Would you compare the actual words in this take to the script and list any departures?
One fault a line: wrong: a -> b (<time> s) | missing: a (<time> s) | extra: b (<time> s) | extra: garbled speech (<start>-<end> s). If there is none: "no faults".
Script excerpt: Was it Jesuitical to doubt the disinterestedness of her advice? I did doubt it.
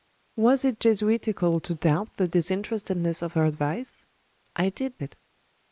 missing: doubt (5.0 s)